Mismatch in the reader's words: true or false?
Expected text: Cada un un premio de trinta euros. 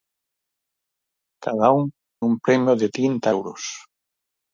false